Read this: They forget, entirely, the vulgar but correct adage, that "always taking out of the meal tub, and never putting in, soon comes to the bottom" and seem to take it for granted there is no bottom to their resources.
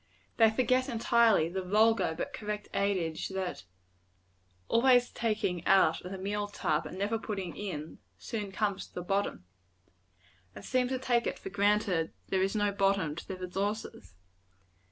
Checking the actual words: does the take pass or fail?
pass